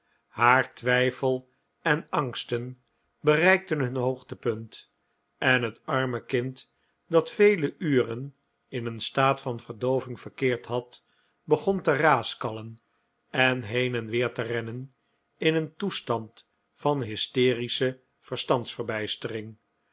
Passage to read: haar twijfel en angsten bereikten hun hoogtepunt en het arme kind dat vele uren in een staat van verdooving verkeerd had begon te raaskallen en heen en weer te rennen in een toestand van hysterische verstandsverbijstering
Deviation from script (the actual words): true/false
false